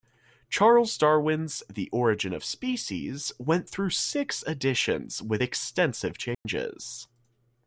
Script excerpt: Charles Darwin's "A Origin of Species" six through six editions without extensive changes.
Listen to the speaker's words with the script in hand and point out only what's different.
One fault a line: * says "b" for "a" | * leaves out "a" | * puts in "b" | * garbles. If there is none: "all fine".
* says "The" for "A"
* says "went" for "six"
* says "with" for "without"